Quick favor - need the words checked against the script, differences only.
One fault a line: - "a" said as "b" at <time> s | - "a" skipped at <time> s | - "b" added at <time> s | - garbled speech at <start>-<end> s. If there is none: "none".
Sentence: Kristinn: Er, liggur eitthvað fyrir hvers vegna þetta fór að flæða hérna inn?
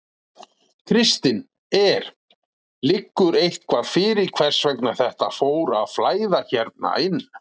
none